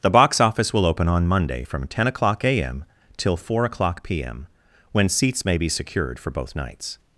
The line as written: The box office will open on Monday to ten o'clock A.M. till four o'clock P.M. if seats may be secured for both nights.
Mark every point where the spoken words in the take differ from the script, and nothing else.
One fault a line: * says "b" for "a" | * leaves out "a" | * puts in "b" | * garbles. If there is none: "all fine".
* says "from" for "to"
* says "when" for "if"